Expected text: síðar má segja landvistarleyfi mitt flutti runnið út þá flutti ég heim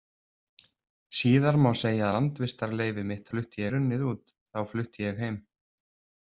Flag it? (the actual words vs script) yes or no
no